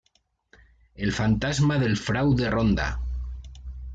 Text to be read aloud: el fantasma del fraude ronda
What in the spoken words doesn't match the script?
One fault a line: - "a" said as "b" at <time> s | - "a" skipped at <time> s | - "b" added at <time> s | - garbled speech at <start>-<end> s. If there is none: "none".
none